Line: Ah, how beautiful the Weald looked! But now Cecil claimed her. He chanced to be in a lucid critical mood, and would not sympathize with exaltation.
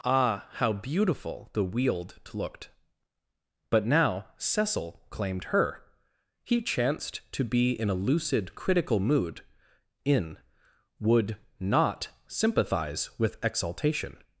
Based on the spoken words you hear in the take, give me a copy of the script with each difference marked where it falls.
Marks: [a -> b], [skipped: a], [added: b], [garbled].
Ah, how beautiful the Weald looked! But now Cecil claimed her. He chanced to be in a lucid critical mood, [and -> in] would not sympathize with exaltation.